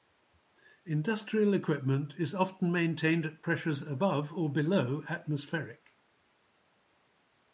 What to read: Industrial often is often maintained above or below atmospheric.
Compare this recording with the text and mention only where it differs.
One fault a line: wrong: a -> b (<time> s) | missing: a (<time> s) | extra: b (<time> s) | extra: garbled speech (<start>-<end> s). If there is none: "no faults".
wrong: often -> equipment (1.5 s)
extra: at pressures (3.3 s)